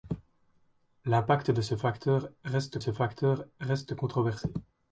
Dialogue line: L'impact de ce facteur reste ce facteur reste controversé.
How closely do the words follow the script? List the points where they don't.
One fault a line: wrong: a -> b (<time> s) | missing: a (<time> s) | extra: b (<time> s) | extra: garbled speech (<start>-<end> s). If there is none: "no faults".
no faults